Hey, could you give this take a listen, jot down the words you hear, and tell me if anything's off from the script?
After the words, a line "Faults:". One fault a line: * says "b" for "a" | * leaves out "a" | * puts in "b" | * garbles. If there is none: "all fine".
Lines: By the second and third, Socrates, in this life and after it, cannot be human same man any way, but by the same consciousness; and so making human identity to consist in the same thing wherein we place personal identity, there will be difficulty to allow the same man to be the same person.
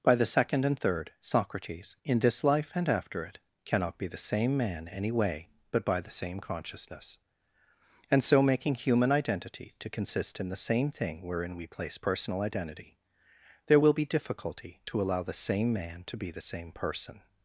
By the second and third, Socrates, in this life and after it, cannot be the same man any way, but by the same consciousness; and so making human identity to consist in the same thing wherein we place personal identity, there will be difficulty to allow the same man to be the same person.
Faults:
* says "the" for "human"